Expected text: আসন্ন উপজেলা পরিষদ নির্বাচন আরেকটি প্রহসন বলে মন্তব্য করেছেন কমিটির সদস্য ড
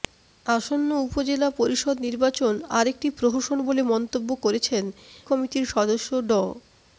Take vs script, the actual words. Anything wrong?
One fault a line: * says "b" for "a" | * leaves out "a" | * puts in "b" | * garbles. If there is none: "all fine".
all fine